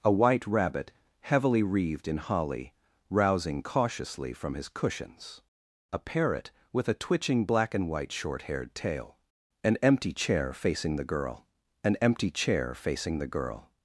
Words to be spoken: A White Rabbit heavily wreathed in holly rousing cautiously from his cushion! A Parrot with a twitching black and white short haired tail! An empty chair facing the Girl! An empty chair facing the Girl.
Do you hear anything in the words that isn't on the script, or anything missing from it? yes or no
yes